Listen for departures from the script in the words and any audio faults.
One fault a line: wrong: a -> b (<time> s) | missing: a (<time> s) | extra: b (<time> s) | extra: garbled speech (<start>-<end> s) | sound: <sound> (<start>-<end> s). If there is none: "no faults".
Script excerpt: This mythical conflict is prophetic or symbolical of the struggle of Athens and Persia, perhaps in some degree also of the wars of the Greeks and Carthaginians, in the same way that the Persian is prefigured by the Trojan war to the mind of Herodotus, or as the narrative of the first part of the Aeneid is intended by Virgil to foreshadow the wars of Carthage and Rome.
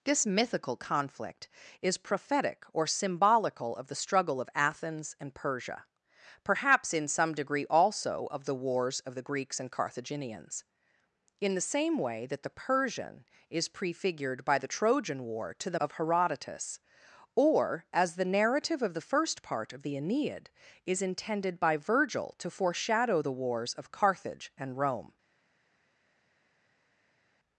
missing: mind (15.8 s)